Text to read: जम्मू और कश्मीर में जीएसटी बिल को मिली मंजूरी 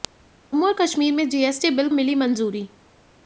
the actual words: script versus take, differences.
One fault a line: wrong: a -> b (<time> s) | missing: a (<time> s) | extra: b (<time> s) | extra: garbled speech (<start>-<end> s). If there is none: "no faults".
missing: को (1.9 s)